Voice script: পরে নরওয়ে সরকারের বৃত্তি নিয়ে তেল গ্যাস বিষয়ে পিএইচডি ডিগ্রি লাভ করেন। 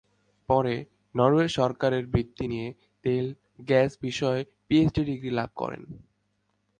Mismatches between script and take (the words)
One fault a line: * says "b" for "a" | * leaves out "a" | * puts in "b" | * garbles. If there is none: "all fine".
all fine